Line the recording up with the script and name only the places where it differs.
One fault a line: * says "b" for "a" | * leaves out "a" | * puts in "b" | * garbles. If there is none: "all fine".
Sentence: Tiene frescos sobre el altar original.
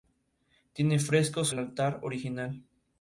* leaves out "sobre"